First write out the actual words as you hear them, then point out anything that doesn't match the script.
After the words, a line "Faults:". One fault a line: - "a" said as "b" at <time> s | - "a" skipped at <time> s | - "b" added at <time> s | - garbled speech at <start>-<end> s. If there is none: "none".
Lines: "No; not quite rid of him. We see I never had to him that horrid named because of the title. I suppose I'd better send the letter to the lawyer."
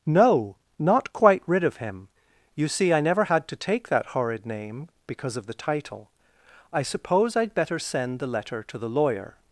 "No; not quite rid of him. You see I never had to take that horrid name because of the title. I suppose I'd better send the letter to the lawyer."
Faults:
- "We" said as "You" at 2.5 s
- "him" said as "take" at 3.6 s
- "named" said as "name" at 4.5 s